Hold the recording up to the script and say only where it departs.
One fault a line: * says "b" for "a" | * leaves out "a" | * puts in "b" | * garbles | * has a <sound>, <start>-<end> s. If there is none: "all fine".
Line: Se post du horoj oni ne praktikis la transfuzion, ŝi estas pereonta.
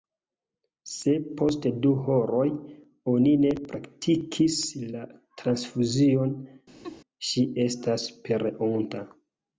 * has a laugh, 6.8-7.0 s